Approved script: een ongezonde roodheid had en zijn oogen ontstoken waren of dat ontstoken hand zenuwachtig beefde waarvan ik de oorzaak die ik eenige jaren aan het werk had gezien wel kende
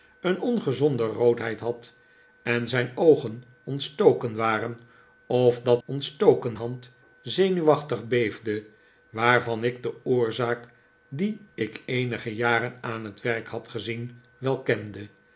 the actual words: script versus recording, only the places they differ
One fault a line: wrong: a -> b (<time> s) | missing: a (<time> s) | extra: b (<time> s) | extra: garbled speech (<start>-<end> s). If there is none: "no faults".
no faults